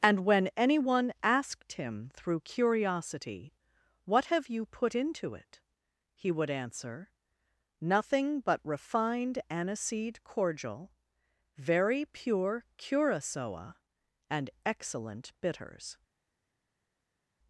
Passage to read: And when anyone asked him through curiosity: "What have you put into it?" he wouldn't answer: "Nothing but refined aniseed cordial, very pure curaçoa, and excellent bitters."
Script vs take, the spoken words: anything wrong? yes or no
yes